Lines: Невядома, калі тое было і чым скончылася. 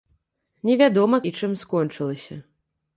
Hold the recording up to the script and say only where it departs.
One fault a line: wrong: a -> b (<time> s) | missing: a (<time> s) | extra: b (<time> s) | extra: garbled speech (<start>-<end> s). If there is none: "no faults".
missing: калі тое было (1.2 s)